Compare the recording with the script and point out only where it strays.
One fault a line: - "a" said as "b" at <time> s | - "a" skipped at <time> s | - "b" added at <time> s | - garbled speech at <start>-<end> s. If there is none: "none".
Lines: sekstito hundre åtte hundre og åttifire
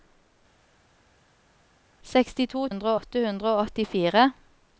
none